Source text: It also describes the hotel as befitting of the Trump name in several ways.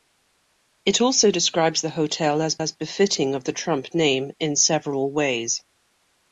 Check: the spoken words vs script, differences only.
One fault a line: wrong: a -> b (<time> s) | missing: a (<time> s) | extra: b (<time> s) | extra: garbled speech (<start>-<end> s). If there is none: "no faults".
extra: as (2.6 s)